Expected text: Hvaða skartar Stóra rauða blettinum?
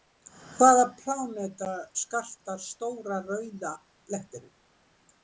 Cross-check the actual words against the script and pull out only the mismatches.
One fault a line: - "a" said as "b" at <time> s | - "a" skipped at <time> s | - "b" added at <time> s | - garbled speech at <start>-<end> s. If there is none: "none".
- "pláneta" added at 1.0 s